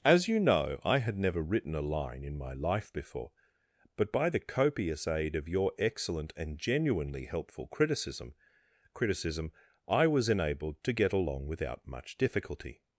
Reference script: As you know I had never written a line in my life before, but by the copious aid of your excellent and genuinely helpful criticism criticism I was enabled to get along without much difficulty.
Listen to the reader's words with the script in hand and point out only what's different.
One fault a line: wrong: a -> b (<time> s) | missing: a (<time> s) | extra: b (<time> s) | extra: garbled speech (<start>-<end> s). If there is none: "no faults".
no faults